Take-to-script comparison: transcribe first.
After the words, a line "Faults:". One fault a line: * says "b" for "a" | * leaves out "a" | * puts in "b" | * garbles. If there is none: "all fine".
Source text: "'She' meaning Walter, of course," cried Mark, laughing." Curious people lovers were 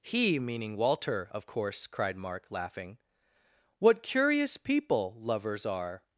"'He' meaning Walter, of course," cried Mark, laughing." What curious people lovers are
Faults:
* says "He" for "She"
* puts in "What"
* says "are" for "were"